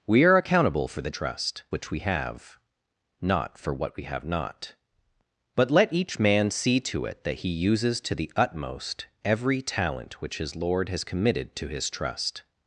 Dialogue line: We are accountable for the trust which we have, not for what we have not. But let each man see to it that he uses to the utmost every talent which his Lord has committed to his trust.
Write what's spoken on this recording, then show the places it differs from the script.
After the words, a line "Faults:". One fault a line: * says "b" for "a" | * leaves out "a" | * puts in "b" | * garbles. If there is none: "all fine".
We are accountable for the trust which we have, not for what we have not. But let each man see to it that he uses to the utmost every talent which his Lord has committed to his trust.
Faults:
all fine